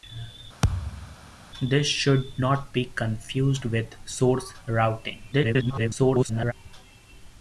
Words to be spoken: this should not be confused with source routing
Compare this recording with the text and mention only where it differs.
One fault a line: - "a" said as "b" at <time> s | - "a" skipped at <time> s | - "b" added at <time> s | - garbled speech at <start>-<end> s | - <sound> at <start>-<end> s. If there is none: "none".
- thud at 0.6-1.2 s
- garbled speech at 5.3-6.5 s